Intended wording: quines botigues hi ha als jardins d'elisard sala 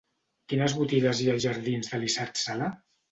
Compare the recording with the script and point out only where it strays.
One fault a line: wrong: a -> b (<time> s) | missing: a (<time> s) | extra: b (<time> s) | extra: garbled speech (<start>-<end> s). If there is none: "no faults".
no faults